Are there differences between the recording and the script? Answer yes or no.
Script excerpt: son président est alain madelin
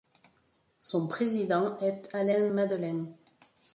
no